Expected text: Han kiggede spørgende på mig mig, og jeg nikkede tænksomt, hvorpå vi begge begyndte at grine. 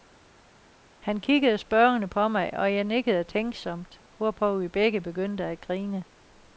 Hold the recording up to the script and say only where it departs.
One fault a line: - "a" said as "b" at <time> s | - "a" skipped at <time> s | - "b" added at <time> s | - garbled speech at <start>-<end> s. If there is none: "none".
- "mig" skipped at 2.5 s